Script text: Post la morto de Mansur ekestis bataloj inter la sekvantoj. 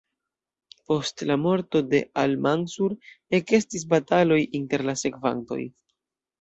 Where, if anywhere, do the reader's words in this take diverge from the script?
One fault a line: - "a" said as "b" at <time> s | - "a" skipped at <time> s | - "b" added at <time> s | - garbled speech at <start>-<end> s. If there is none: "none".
- "al" added at 2.2 s